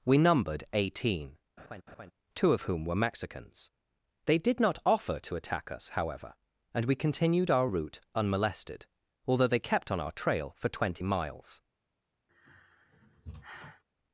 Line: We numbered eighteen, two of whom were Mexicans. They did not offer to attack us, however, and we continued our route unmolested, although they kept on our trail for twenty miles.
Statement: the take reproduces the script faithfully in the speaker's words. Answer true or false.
true